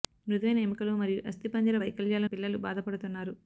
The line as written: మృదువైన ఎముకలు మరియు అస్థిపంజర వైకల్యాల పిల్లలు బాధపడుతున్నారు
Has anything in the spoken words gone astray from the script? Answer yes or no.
no